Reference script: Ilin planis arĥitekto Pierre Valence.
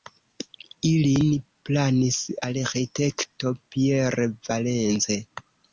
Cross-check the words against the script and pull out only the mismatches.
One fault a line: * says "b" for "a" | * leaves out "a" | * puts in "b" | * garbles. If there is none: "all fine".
all fine